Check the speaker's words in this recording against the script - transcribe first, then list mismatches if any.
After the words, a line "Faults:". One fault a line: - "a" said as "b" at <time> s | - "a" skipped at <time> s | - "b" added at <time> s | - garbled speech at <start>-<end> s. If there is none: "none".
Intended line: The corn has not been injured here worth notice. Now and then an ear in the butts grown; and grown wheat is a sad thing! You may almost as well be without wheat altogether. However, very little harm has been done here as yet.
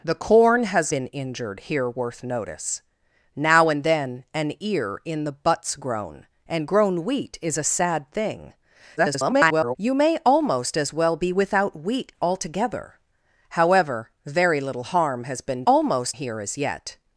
The corn has been injured here worth notice. Now and then an ear in the butts grown; and grown wheat is a sad thing! [garbled] You may almost as well be without wheat altogether. However, very little harm has been almost here as yet.
Faults:
- "not" skipped at 0.9 s
- garbled speech at 9.0-9.8 s
- "done" said as "almost" at 15.7 s